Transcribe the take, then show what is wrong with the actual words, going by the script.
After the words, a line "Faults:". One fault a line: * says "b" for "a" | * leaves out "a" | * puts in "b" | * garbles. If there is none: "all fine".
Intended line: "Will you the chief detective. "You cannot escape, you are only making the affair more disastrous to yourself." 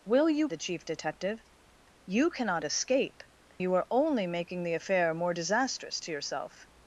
"Will you the chief detective. "You cannot escape, you are only making the affair more disastrous to yourself."
Faults:
all fine